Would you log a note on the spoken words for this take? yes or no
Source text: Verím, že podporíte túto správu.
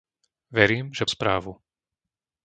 yes